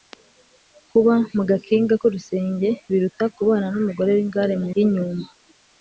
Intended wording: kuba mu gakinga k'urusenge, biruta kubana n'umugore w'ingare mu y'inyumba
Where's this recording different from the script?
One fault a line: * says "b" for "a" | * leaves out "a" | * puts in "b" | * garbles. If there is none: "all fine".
all fine